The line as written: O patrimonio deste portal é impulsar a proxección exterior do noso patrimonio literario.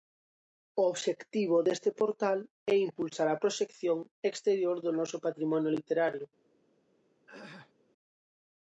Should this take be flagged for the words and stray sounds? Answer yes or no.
yes